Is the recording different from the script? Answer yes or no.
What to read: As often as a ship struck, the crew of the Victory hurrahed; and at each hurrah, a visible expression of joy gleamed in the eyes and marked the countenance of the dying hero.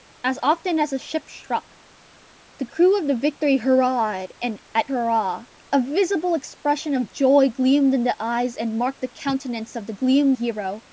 yes